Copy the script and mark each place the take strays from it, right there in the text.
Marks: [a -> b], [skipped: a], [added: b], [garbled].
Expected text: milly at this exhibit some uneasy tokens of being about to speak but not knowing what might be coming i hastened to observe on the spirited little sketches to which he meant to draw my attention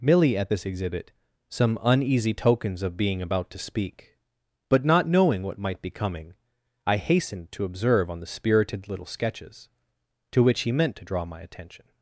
milly at this exhibit some uneasy tokens of being about to speak but not knowing what might be coming i hastened to observe on the spirited little sketches to which he meant to draw my attention